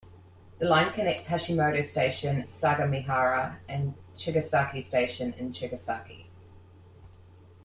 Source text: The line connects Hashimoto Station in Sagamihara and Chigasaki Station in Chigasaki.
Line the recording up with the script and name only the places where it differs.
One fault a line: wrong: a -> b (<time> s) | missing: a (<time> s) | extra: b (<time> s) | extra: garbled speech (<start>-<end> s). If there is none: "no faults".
missing: in (2.4 s)